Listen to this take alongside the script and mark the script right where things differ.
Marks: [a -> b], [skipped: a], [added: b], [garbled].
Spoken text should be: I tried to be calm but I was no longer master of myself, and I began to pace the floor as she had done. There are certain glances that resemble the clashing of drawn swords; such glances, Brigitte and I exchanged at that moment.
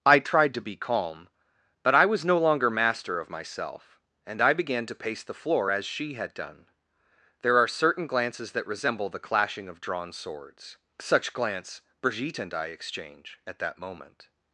I tried to be calm but I was no longer master of myself, and I began to pace the floor as she had done. There are certain glances that resemble the clashing of drawn swords; such [glances, -> glance] Brigitte and I [exchanged -> exchange] at that moment.